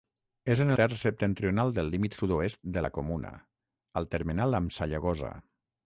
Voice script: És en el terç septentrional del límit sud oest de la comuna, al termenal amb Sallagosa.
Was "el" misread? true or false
true